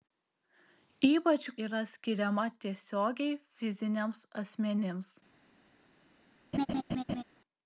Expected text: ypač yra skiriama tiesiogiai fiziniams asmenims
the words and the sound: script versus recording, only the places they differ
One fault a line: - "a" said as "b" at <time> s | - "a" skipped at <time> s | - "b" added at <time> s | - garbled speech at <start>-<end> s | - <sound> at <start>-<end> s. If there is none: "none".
- laugh at 6.5-7.2 s